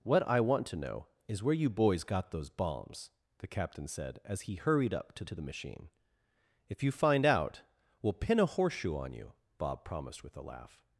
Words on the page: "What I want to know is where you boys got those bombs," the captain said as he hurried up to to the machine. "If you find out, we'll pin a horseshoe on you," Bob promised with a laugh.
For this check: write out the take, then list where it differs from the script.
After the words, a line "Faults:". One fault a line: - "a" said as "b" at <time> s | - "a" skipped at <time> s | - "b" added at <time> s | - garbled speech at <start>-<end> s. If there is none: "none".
"What I want to know is where you boys got those bombs," the captain said as he hurried up to to the machine. "If you find out, we'll pin a horseshoe on you," Bob promised with a laugh.
Faults:
none